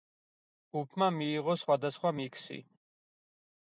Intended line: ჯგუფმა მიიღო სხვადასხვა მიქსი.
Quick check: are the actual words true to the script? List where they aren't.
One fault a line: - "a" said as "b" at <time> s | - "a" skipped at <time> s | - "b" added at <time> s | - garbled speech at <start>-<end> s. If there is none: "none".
none